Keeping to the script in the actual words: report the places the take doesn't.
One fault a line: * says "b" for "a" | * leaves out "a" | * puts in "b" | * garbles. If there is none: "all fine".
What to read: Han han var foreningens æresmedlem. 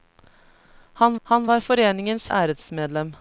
all fine